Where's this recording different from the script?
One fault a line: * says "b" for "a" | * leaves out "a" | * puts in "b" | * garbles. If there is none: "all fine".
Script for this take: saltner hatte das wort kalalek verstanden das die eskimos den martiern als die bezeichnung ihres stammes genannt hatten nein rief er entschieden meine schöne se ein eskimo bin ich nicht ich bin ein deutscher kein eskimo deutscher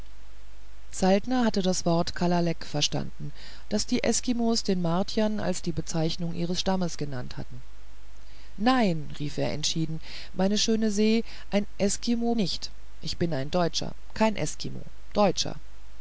* leaves out "bin ich"